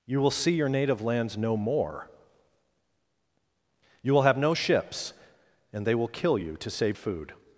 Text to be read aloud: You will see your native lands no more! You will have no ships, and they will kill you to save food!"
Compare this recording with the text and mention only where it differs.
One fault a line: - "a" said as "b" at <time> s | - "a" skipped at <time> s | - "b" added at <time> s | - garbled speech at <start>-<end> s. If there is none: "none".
none